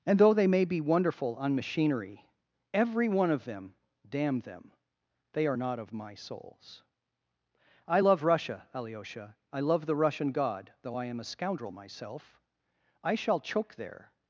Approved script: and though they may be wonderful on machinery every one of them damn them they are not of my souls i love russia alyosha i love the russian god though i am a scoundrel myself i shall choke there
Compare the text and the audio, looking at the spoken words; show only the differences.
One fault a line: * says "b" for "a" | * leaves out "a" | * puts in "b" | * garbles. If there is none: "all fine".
all fine